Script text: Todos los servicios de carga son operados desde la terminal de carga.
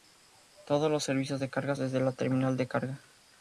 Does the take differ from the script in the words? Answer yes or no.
yes